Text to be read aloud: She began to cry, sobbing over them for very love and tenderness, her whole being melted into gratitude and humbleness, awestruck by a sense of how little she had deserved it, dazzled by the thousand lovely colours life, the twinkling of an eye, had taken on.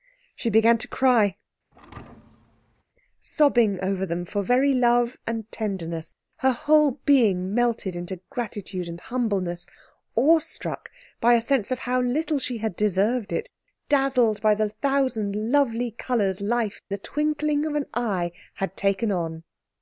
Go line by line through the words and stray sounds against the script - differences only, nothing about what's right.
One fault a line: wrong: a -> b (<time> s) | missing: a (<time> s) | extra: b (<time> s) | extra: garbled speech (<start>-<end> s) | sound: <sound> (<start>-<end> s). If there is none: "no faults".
sound: thud (1.7-2.8 s)